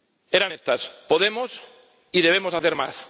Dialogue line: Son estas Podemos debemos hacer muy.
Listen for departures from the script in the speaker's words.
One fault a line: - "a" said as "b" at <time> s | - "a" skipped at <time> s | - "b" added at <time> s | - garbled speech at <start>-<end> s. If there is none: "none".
- "Son" said as "Eran" at 0.3 s
- "y" added at 2.1 s
- "muy" said as "más" at 2.7 s